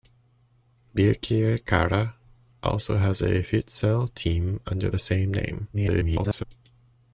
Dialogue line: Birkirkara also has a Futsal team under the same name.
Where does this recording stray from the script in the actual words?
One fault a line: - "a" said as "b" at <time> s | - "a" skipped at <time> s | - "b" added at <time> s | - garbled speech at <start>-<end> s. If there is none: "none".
- garbled speech at 5.7-6.4 s